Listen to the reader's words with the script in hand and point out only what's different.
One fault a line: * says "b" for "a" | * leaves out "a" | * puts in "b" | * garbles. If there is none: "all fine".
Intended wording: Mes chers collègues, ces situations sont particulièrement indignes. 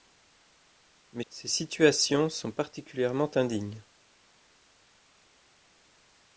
* leaves out "chers collègues"